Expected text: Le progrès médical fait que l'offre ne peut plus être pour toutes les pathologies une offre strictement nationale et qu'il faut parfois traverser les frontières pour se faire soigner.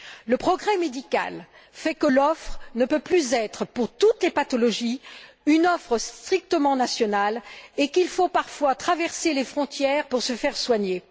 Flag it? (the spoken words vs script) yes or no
no